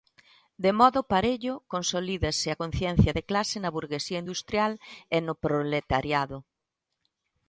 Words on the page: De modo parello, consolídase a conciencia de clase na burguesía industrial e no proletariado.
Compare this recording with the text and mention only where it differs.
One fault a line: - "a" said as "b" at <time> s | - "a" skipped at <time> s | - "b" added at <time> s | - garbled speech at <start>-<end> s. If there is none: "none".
none